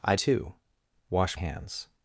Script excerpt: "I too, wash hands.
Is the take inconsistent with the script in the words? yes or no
no